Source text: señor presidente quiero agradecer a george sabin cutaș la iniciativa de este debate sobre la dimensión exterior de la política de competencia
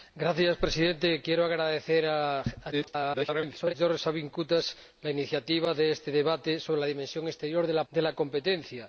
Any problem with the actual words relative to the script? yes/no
yes